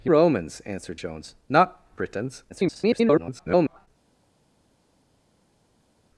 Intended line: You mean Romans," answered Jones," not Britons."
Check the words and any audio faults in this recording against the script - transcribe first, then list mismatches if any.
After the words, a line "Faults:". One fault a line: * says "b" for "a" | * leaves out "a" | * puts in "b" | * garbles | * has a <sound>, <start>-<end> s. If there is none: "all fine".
You Romans," answered Jones," not Britons." [garbled]
Faults:
* leaves out "mean"
* garbles